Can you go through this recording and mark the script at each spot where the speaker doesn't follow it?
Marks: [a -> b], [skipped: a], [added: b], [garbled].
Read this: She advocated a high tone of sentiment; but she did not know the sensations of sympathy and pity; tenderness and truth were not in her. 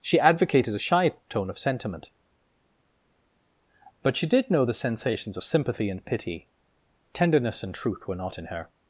She advocated a [high -> shy] tone of sentiment; but she did [skipped: not] know the sensations of sympathy and pity; tenderness and truth were not in her.